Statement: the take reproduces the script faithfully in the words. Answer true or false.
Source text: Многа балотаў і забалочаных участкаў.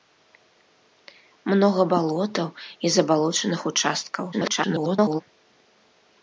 false